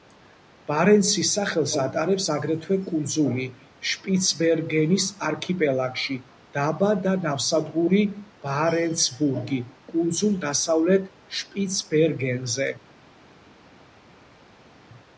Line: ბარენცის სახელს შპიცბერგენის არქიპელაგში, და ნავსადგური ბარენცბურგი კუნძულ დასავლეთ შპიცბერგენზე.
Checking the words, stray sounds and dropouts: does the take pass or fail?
fail